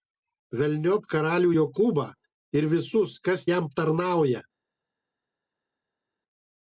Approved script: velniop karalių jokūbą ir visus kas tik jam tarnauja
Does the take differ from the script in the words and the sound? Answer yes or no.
yes